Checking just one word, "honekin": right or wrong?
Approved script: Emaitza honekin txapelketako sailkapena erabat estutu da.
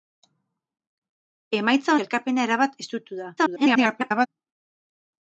wrong